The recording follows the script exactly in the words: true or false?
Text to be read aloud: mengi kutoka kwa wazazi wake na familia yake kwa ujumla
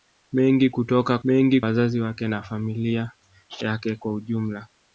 false